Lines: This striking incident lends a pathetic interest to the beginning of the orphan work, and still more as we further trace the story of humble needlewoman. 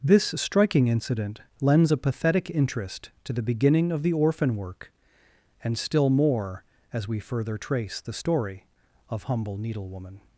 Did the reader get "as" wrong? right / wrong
right